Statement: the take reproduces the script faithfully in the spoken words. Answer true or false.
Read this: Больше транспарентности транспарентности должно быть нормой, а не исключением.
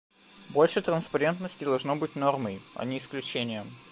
false